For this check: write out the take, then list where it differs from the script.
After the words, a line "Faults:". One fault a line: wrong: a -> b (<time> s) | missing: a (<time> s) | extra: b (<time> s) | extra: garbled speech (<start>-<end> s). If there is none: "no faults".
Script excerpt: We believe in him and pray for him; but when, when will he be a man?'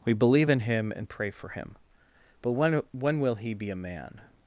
We believe in him and pray for him; but when, when will he be a man?'
Faults:
no faults